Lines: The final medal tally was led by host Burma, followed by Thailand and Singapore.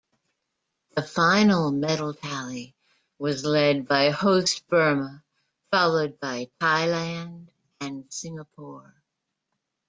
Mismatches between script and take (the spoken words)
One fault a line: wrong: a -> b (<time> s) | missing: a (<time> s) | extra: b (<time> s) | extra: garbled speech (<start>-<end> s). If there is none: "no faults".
no faults